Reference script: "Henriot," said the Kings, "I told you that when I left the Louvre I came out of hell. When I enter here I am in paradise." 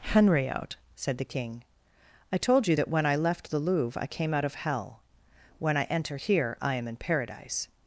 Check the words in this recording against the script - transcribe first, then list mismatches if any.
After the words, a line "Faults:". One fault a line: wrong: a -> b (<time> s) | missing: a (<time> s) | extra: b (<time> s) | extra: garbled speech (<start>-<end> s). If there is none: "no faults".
"Henriot," said the King, "I told you that when I left the Louvre I came out of hell. When I enter here I am in paradise."
Faults:
wrong: Kings -> King (1.2 s)